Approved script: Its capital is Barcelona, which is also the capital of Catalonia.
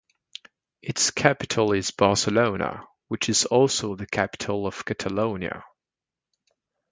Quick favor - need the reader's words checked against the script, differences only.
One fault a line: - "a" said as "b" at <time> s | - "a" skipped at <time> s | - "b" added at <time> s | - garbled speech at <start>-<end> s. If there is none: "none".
none